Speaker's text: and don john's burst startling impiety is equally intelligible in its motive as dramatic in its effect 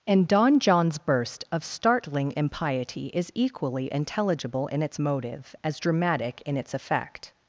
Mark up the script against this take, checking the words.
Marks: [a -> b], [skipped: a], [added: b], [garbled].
and don john's burst [added: of] startling impiety is equally intelligible in its motive as dramatic in its effect